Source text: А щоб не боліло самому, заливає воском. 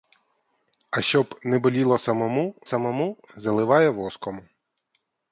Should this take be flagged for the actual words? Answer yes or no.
yes